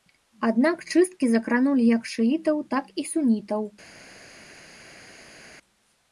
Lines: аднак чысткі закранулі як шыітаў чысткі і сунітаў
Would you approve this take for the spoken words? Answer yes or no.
no